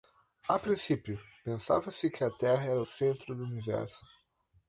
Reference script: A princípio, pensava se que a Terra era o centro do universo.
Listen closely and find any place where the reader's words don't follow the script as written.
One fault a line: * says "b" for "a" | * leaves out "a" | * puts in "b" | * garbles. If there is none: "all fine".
all fine